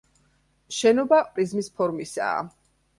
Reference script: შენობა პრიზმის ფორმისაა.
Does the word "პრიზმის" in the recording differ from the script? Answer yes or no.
no